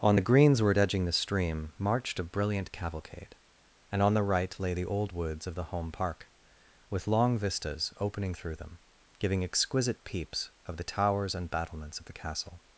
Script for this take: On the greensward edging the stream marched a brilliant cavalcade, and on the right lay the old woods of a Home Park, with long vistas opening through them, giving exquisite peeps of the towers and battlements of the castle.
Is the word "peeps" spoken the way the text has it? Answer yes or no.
yes